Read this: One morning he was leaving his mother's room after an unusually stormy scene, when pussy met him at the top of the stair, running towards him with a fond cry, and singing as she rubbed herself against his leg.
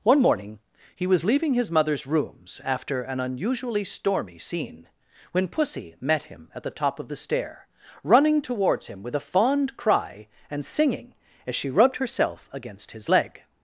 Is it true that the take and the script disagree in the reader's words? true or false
true